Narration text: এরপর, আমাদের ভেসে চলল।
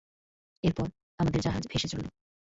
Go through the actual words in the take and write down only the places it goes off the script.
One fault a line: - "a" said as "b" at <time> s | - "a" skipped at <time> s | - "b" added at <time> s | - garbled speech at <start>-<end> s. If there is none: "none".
- "জাহাজ" added at 1.4 s